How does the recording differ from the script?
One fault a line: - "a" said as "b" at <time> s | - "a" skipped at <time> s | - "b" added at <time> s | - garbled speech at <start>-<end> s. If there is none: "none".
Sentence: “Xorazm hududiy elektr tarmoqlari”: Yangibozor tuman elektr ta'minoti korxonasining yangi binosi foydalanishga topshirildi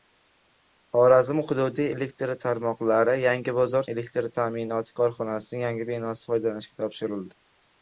- "tuman" skipped at 3.9 s